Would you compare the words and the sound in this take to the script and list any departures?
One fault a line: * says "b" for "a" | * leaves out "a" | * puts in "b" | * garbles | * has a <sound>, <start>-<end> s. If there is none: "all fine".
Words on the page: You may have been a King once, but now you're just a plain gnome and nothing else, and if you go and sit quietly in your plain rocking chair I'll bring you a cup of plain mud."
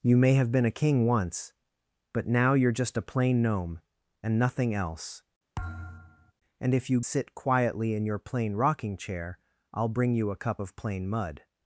* has a thud, 5.6-6.3 s
* leaves out "go and"